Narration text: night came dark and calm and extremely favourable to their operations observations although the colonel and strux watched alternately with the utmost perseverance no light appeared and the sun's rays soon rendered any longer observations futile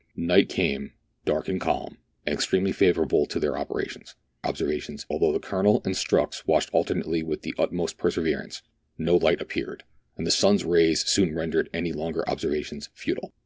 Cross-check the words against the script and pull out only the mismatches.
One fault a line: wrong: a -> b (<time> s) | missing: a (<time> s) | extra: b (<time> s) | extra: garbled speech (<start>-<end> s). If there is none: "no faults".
no faults